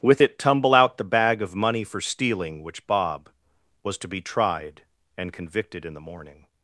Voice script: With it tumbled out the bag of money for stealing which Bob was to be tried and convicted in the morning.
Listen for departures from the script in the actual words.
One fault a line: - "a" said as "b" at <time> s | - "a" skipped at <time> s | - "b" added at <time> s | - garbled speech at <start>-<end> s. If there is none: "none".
- "tumbled" said as "tumble" at 0.4 s